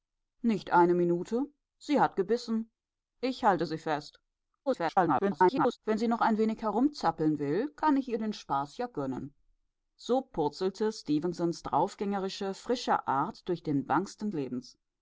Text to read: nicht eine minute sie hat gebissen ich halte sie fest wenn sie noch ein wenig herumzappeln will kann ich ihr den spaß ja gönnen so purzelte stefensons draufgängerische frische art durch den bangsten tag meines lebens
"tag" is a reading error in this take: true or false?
true